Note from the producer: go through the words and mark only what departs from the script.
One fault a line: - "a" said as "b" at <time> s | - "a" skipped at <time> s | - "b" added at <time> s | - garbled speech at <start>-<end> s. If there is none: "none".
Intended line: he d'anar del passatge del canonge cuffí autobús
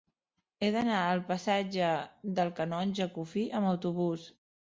- "del" said as "al" at 1.1 s
- "amb" added at 3.6 s